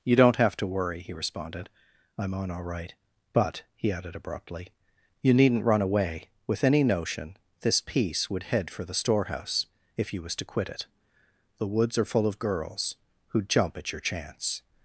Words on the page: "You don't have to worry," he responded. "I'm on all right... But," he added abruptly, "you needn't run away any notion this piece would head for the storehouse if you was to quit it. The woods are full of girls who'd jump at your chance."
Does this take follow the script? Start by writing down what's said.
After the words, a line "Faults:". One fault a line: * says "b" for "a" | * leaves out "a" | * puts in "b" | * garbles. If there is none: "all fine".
"You don't have to worry," he responded. "I'm on all right... But," he added abruptly, "you needn't run away with any notion this piece would head for the storehouse if you was to quit it. The woods are full of girls who'd jump at your chance."
Faults:
* puts in "with"